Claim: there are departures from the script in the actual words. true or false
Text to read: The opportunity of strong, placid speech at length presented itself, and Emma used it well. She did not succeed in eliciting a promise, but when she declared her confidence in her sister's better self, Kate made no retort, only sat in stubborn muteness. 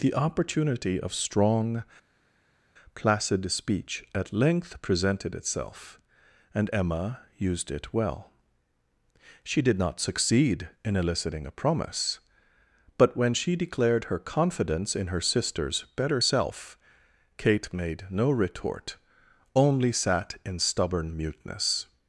false